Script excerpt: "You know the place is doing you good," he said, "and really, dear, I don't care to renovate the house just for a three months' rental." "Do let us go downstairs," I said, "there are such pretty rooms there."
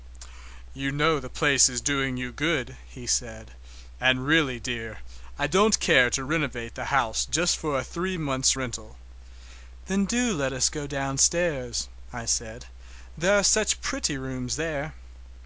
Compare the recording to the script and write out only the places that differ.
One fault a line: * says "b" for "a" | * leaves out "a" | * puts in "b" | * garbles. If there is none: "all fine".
* puts in "Then"